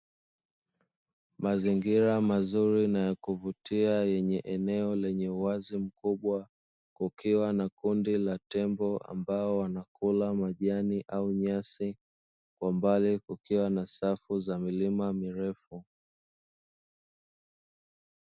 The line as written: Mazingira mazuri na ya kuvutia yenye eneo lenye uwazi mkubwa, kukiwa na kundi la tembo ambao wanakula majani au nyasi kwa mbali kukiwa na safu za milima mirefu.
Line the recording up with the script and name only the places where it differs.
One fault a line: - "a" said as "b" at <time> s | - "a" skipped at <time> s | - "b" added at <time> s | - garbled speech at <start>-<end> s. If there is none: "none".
none